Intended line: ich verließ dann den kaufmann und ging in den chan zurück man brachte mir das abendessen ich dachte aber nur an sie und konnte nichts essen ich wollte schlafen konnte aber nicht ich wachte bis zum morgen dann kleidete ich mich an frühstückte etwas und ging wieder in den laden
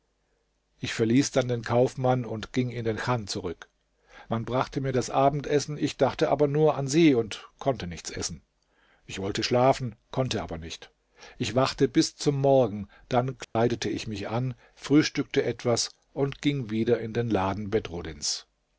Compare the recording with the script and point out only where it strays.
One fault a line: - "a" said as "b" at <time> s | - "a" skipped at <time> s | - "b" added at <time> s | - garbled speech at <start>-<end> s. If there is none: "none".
none